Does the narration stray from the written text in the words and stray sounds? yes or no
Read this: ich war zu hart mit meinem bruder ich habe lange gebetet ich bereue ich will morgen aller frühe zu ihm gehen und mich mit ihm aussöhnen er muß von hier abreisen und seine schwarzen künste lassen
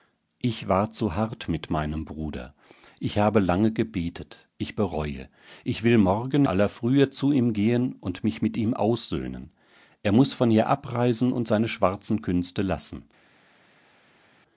no